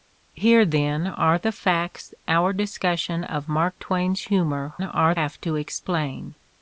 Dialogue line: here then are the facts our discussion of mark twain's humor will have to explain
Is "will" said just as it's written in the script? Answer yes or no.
no